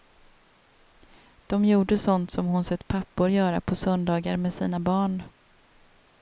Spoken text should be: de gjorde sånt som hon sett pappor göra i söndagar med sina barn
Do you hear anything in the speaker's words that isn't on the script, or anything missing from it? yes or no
yes